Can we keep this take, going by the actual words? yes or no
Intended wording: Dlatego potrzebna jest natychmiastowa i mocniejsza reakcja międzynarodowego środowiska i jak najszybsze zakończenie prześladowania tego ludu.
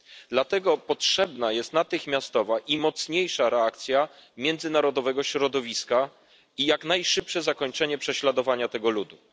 yes